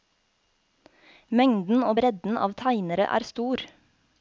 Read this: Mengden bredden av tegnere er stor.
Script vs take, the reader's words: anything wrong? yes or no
yes